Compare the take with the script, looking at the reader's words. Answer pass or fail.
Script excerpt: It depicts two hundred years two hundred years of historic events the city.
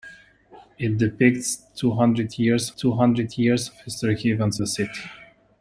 pass